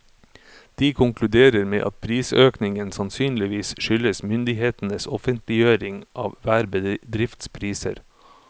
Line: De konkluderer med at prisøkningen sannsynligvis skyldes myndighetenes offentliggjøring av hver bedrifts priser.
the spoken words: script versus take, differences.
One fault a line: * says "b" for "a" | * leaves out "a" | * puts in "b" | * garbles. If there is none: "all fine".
all fine